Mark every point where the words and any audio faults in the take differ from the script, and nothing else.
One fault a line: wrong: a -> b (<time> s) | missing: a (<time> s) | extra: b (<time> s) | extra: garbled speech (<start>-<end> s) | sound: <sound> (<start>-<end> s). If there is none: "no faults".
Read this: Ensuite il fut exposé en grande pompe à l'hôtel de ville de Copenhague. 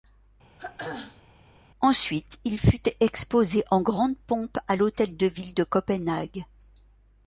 sound: throat clearing (0.6-1.2 s)